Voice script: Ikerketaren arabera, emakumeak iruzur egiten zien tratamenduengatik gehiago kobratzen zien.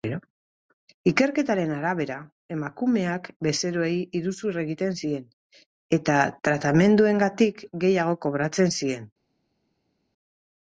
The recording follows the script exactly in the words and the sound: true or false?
false